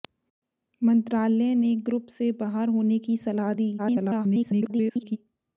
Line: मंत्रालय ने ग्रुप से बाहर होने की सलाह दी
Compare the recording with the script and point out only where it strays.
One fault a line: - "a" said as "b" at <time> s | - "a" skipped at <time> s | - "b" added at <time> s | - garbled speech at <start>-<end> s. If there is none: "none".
- garbled speech at 3.8-5.2 s